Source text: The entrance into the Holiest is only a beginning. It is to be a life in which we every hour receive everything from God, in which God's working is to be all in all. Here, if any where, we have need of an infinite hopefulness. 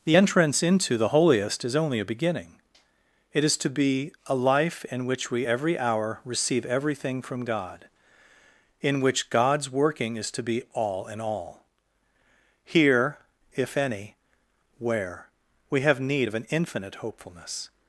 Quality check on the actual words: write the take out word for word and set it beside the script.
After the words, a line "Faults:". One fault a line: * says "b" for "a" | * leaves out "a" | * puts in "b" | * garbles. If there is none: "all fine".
The entrance into the Holiest is only a beginning. It is to be a life in which we every hour receive everything from God, in which God's working is to be all in all. Here, if any where, we have need of an infinite hopefulness.
Faults:
all fine